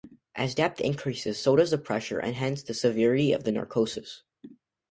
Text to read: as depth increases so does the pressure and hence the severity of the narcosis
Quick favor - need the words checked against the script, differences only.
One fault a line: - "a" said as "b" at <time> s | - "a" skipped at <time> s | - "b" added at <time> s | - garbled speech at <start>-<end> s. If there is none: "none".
none